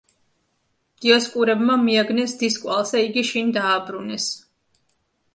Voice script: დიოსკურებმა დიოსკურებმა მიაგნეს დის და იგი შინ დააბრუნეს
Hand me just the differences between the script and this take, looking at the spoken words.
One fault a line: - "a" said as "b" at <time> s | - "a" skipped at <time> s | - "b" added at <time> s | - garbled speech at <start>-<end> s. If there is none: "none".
- "დიოსკურებმა" skipped at 1.8 s
- "კვალს" added at 2.6 s